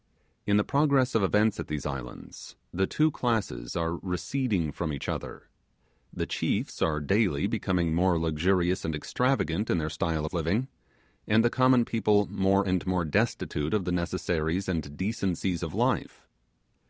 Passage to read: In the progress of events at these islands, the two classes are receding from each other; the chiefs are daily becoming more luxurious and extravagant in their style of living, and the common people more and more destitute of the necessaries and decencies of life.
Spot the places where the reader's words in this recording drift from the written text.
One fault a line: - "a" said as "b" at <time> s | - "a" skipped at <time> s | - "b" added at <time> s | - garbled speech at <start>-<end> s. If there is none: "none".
none